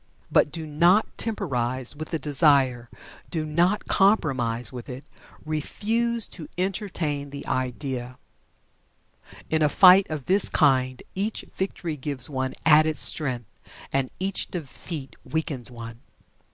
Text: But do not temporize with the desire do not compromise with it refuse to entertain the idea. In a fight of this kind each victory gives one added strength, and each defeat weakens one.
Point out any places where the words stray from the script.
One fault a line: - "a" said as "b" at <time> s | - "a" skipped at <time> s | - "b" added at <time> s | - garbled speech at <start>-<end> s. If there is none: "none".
none